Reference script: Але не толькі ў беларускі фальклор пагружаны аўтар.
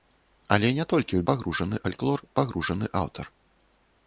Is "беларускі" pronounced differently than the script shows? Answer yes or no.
yes